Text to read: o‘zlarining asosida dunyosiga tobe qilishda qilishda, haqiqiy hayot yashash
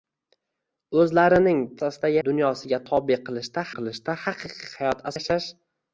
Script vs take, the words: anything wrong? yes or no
no